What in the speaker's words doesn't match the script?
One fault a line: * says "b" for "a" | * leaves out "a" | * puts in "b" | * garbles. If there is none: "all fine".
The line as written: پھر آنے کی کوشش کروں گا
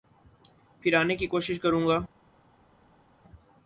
all fine